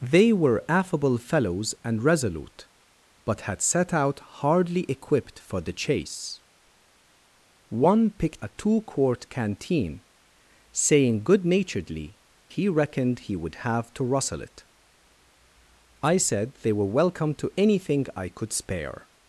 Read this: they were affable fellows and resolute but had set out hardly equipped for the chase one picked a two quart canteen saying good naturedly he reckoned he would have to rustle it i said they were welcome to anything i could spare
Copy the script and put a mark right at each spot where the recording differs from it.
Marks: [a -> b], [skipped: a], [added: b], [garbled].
they were affable fellows and resolute but had set out hardly equipped for the chase one picked a two quart canteen saying good naturedly he reckoned he would have to rustle it i said they were welcome to anything i could spare